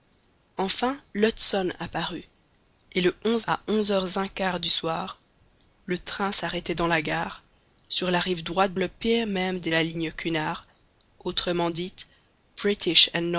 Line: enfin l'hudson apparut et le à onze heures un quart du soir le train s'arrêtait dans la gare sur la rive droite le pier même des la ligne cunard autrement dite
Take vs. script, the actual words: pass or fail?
pass